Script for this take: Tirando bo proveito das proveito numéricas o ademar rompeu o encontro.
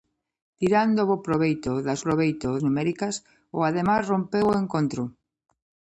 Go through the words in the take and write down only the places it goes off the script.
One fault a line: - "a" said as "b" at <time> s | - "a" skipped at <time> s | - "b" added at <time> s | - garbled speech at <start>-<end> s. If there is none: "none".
none